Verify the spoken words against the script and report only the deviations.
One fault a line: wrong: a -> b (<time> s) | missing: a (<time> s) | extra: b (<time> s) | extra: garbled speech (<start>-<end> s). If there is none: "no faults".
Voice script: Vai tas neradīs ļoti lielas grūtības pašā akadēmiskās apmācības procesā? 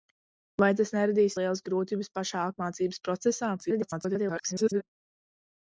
missing: ļoti (1.4 s)
missing: akadēmiskās (2.5 s)
extra: garbled speech (3.6-4.8 s)